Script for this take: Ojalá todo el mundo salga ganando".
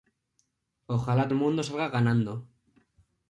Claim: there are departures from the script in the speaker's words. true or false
true